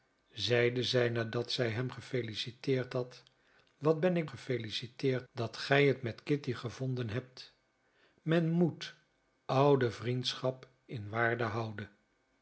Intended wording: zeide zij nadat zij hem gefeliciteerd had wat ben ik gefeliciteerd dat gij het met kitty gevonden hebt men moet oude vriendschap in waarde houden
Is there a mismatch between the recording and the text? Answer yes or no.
no